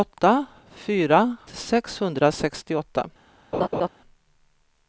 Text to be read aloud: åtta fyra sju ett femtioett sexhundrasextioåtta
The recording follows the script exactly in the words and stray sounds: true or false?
false